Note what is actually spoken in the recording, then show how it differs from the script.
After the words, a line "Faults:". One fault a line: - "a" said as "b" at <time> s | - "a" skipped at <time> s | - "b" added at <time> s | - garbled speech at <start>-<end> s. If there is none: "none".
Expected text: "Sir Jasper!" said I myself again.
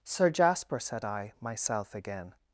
"Sir Jasper!" said I myself again.
Faults:
none